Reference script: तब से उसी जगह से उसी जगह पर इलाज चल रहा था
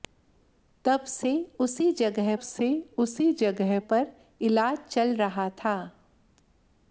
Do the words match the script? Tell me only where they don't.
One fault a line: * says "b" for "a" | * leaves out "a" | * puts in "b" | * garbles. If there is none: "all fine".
all fine